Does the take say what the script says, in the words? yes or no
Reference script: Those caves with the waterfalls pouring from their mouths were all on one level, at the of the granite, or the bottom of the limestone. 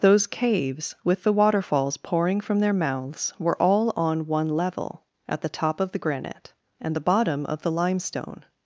no